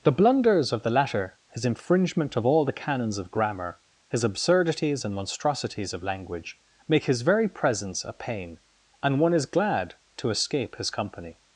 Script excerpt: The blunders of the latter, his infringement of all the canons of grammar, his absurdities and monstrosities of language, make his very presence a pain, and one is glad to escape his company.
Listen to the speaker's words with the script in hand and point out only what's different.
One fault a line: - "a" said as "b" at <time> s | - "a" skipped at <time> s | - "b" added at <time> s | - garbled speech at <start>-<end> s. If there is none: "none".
none